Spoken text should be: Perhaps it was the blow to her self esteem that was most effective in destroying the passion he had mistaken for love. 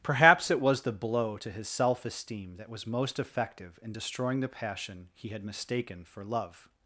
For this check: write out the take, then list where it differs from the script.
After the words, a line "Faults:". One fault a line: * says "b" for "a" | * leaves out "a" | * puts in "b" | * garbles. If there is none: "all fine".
Perhaps it was the blow to his self esteem that was most effective in destroying the passion he had mistaken for love.
Faults:
* says "his" for "her"